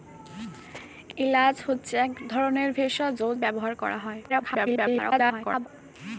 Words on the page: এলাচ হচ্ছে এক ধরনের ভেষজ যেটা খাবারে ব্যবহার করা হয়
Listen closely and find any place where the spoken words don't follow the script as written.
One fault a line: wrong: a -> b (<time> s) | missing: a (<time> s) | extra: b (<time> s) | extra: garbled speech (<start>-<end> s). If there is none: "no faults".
missing: যেটা খাবারে (3.2 s)
extra: garbled speech (4.3-5.7 s)